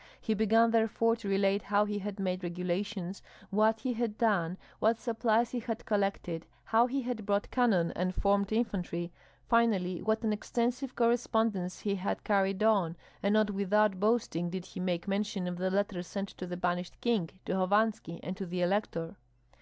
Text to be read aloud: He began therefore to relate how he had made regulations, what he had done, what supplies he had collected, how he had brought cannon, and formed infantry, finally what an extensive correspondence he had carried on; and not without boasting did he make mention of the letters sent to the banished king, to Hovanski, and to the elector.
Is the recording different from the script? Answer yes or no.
no